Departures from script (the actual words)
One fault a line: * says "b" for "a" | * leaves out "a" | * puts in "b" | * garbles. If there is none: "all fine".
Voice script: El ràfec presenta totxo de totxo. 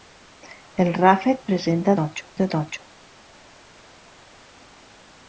all fine